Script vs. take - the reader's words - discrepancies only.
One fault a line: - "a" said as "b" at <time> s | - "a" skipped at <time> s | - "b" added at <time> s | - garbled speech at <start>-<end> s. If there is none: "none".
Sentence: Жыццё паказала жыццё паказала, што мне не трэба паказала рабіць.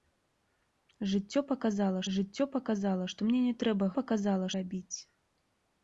none